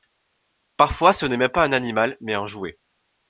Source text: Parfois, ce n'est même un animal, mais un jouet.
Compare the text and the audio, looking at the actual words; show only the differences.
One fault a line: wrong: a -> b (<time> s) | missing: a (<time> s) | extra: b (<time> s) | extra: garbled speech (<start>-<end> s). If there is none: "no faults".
extra: pas (1.5 s)